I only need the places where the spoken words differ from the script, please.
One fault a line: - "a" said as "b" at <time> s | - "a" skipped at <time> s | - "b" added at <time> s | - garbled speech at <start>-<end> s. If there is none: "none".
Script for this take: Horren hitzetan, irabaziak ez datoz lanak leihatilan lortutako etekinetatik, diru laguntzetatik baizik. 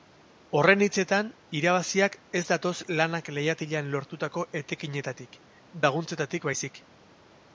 - "diru" skipped at 5.4 s